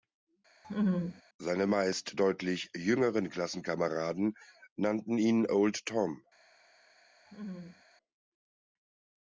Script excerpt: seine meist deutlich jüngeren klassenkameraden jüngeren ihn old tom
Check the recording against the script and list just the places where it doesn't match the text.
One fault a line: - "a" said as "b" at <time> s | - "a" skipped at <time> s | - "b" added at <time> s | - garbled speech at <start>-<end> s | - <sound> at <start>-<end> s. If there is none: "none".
- laugh at 0.6-1.2 s
- "jüngeren" said as "nannten" at 4.7 s
- laugh at 7.3-7.8 s